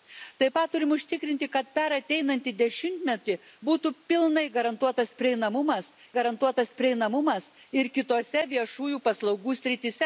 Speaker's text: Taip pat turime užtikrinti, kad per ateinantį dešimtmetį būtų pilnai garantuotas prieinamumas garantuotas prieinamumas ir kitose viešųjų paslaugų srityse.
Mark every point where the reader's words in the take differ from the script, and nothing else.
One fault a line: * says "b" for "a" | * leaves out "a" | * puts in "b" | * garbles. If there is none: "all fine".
all fine